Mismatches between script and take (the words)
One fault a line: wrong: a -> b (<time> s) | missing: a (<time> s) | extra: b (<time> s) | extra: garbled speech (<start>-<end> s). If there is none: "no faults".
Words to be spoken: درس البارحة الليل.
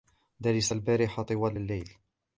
extra: طوال (1.2 s)